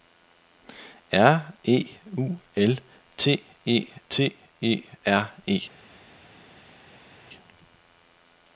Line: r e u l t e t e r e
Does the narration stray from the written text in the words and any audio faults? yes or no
no